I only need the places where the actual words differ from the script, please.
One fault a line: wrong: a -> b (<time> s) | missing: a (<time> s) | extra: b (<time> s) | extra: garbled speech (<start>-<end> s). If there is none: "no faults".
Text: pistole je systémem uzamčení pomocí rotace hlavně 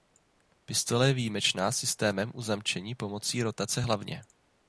extra: výjimečná (1.1 s)